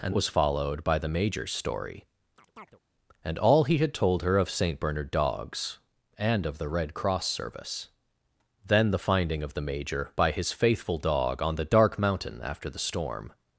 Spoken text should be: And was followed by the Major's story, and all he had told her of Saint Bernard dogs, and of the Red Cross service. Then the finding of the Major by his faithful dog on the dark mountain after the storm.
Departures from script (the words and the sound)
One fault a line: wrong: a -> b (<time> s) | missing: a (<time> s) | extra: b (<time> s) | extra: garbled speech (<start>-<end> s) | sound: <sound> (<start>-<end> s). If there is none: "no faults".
sound: chirp (2.4-2.8 s)